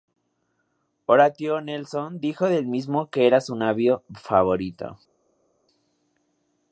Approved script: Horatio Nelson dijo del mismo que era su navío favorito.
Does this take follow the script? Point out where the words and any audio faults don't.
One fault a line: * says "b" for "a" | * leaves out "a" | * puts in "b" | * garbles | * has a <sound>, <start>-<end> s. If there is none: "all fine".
all fine